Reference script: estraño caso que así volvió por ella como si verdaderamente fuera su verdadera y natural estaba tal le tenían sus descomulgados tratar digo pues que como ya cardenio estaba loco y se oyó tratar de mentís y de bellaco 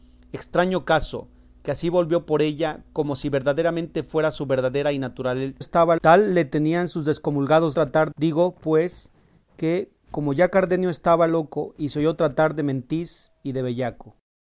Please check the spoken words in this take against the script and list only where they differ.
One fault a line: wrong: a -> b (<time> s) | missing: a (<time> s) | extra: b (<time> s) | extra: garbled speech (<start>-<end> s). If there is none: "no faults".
no faults